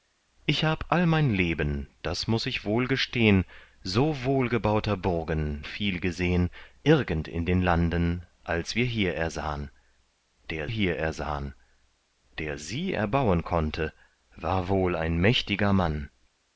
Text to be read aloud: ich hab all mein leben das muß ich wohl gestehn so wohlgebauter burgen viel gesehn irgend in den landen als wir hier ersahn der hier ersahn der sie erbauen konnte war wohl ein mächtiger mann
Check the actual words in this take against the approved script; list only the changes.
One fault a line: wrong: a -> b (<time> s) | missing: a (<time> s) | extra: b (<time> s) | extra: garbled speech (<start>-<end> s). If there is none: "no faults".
no faults